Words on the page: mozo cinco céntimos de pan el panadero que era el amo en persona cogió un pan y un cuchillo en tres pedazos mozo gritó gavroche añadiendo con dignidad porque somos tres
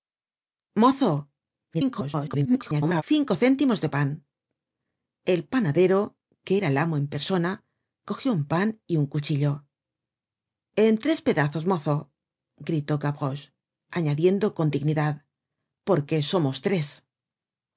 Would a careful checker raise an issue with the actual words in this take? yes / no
yes